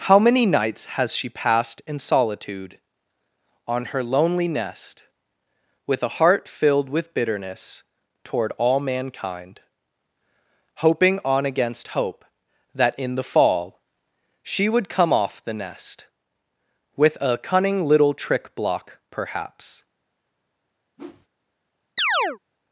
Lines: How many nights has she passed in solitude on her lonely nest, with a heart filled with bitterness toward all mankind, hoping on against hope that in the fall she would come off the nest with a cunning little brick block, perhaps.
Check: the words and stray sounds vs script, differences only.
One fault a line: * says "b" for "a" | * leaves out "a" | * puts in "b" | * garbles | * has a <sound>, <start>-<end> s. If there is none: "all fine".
* says "trick" for "brick"
* has a whoosh, 21.0-21.3 s
* has a chirp, 22.0-22.4 s